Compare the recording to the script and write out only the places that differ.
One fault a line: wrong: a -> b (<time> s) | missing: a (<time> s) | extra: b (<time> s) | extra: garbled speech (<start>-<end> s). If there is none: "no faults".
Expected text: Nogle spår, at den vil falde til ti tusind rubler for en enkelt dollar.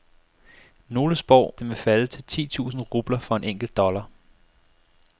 missing: at (1.6 s)